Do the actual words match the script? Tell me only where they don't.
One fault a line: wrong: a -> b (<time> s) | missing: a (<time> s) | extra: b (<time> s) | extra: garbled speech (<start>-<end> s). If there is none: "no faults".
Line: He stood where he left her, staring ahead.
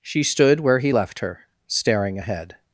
wrong: He -> She (0.0 s)